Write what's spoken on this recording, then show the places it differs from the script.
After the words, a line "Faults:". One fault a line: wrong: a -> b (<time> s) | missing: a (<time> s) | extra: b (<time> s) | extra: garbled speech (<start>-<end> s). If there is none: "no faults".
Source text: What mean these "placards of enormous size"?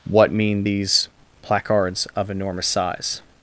What mean these "placards of enormous size"?
Faults:
no faults